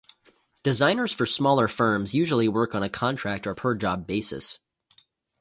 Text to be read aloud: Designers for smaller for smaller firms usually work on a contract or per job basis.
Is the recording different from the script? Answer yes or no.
yes